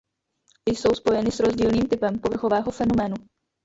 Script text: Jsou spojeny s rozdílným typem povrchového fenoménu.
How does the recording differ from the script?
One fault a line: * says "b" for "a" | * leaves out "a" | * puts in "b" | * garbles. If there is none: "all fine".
all fine